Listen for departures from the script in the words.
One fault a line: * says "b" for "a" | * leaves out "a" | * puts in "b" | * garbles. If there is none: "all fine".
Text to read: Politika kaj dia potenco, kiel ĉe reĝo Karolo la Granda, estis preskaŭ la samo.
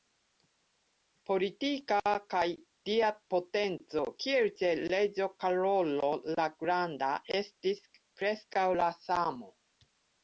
all fine